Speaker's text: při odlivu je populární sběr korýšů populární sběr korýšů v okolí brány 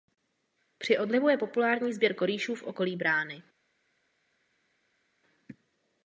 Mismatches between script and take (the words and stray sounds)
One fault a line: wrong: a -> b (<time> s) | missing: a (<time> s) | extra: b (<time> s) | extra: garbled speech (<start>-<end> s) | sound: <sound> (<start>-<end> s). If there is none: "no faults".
missing: populární sběr korýšů (2.5 s)